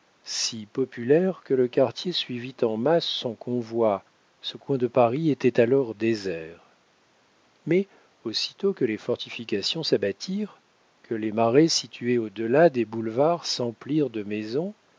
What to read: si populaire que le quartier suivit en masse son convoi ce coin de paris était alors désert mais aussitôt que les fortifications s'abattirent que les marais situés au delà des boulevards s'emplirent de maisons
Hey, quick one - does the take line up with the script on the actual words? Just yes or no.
yes